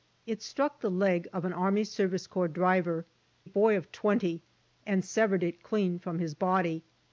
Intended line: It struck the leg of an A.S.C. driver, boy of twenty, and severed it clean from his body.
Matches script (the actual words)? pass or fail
pass